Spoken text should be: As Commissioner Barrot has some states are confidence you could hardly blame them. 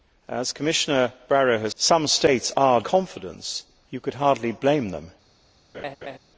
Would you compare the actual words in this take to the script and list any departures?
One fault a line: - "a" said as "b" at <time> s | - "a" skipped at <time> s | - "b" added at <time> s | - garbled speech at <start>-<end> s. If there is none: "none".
none